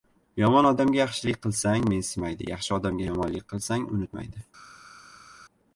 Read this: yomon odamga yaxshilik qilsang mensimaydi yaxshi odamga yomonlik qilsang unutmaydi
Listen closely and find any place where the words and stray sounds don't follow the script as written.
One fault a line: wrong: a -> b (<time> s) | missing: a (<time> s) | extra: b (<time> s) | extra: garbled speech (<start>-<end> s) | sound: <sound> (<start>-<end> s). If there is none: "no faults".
no faults